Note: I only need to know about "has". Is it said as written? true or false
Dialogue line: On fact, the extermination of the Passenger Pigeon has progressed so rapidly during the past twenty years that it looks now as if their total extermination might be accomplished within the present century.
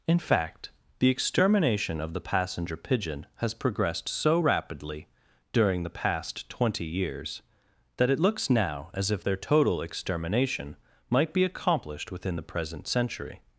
true